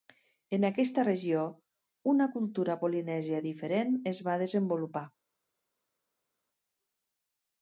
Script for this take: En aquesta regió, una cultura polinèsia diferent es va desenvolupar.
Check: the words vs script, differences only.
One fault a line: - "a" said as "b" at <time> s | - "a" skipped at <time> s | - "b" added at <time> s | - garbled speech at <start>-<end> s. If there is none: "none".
none